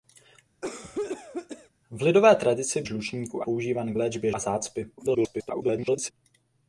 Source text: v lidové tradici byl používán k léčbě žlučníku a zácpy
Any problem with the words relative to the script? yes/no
yes